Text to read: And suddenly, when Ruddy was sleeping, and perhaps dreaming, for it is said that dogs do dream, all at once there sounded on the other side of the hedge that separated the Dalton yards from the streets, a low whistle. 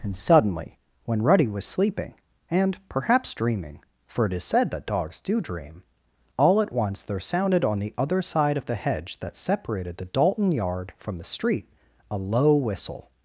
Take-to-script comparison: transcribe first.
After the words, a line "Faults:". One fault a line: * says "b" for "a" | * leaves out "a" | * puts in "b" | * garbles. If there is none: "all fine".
And suddenly, when Ruddy was sleeping, and perhaps dreaming, for it is said that dogs do dream, all at once there sounded on the other side of the hedge that separated the Dalton yard from the street, a low whistle.
Faults:
* says "yard" for "yards"
* says "street" for "streets"